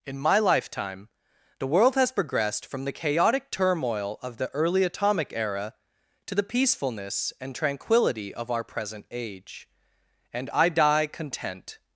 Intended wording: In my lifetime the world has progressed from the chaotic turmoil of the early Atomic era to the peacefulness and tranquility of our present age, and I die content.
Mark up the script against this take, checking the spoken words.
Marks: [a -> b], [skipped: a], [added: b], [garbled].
In my lifetime the world has progressed from the chaotic turmoil of the early Atomic era to the peacefulness and tranquility of our present age, and I die content.